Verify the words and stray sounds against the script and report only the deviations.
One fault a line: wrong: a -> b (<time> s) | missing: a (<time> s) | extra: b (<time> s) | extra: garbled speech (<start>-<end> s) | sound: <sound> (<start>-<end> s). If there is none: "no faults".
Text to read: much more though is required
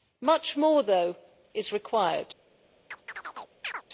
sound: chirp (2.9-3.8 s)